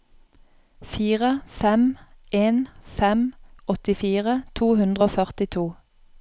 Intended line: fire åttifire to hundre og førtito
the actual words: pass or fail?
fail